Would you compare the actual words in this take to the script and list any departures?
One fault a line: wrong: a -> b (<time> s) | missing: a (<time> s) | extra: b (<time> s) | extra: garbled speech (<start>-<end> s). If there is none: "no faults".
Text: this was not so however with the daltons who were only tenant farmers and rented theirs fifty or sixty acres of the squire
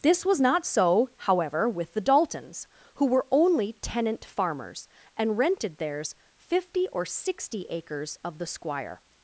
no faults